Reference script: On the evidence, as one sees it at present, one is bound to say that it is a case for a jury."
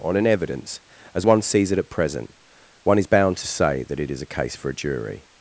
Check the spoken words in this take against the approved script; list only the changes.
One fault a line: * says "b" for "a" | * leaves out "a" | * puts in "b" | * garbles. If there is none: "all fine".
* says "an" for "the"